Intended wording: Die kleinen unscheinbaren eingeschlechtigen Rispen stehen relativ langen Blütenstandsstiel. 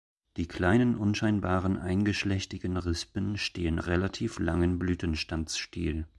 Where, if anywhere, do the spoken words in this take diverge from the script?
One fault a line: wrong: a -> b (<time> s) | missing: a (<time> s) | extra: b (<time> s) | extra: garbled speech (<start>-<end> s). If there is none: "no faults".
no faults